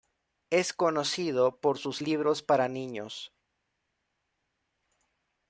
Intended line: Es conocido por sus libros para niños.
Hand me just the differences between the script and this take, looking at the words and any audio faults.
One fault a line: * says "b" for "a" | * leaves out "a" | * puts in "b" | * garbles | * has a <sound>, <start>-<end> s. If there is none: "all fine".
all fine